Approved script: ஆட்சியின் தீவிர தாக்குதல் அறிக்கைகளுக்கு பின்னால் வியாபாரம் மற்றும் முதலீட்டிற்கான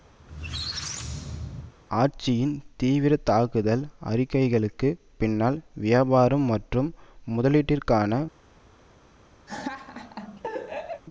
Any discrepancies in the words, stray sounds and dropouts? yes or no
yes